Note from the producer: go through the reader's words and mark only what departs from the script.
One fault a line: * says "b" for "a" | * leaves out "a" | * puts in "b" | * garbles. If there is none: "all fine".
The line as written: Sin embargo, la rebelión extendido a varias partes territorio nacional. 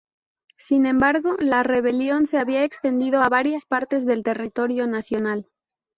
* puts in "se había"
* puts in "del"